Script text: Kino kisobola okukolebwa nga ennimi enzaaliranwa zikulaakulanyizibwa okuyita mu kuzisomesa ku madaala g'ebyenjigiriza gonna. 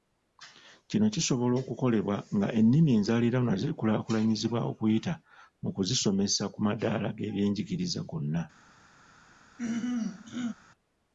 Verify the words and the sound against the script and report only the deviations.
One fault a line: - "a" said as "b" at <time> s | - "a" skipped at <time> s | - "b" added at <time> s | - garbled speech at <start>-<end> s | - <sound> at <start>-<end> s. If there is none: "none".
- throat clearing at 9.6-10.5 s